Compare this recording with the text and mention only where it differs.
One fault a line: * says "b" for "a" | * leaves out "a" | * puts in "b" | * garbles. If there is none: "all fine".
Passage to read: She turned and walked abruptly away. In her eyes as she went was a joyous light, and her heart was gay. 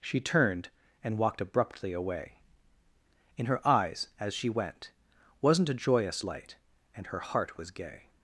* says "wasn't" for "was"